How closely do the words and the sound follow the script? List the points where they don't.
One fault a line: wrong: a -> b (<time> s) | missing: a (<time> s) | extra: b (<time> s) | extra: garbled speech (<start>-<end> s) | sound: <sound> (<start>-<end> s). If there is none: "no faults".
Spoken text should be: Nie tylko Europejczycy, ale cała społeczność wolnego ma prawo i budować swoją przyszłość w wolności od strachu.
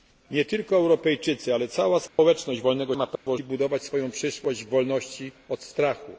sound: dropout (2.1-2.2 s)
sound: dropout (3.2-3.3 s)